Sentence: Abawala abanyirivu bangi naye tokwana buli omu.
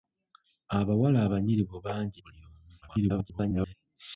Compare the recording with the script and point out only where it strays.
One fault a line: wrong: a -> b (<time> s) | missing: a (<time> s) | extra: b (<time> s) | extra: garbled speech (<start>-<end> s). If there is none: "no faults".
missing: naye tokwana (2.2 s)
extra: garbled speech (2.8-3.7 s)